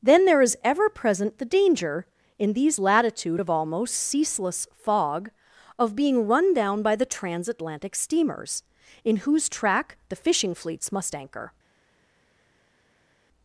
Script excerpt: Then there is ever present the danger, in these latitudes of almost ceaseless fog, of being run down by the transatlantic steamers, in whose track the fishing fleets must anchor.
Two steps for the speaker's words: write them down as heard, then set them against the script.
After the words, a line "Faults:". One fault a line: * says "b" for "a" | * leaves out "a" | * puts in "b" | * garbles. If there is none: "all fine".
Then there is ever present the danger, in these latitude of almost ceaseless fog, of being run down by the transatlantic steamers, in whose track the fishing fleets must anchor.
Faults:
* says "latitude" for "latitudes"